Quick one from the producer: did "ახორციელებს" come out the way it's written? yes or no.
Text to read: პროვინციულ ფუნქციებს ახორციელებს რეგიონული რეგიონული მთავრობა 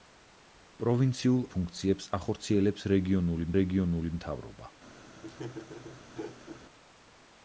yes